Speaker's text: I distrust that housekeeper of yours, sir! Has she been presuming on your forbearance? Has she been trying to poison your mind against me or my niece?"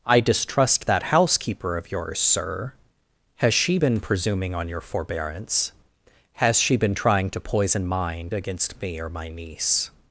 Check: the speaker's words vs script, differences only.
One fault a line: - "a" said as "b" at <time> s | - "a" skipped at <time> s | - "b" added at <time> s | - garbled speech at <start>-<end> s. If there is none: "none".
- "your" skipped at 7.9 s